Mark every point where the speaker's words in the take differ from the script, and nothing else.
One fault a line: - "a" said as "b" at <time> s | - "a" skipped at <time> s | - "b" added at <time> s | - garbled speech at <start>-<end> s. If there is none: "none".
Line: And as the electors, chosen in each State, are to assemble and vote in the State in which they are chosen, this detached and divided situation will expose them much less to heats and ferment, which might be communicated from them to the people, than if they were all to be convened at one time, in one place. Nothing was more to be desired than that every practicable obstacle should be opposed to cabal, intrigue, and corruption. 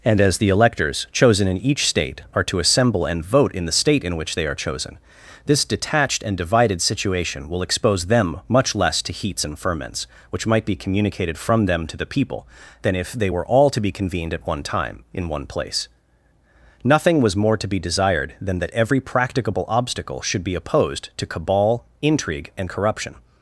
- "ferment" said as "ferments" at 9.6 s